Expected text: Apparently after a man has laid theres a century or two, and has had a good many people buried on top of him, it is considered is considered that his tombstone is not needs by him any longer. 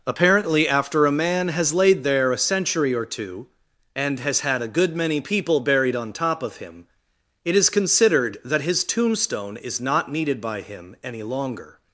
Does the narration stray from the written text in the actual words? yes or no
yes